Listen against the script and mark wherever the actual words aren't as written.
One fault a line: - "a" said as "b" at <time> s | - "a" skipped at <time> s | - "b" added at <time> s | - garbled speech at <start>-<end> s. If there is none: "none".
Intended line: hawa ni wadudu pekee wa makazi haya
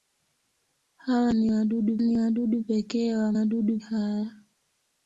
- "ni wadudu" added at 2.0 s
- "makazi" said as "wadudu" at 3.3 s